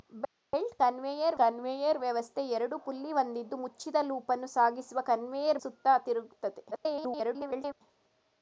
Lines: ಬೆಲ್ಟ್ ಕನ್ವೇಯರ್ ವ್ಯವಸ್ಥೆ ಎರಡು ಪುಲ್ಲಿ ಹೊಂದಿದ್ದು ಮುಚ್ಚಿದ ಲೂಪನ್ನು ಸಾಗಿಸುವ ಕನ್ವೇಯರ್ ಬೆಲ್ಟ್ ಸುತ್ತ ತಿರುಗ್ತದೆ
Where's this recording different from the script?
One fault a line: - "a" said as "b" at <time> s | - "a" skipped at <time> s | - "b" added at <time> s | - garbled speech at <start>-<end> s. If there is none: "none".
- "ಕನ್ವೇಯರ್" added at 1.4 s
- "ಬೆಲ್ಟ್" skipped at 5.6 s
- garbled speech at 6.7-7.8 s